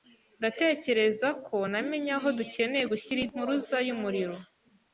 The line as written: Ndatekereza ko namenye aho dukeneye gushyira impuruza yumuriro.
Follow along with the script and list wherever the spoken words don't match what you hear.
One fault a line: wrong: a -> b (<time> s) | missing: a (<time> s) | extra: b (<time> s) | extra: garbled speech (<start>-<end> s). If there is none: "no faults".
no faults